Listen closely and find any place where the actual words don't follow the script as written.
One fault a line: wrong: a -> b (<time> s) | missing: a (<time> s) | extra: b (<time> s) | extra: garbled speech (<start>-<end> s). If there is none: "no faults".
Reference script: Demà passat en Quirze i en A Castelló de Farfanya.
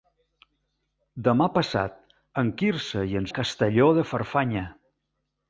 no faults